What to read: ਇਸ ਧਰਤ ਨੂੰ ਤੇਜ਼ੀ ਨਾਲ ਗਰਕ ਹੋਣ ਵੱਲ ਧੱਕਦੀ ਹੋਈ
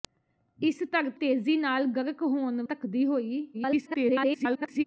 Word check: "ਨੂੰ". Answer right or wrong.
wrong